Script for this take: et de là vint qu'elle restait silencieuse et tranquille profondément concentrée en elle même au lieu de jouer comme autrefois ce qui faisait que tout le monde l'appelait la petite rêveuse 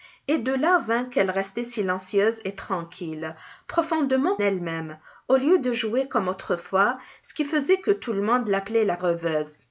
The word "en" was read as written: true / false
false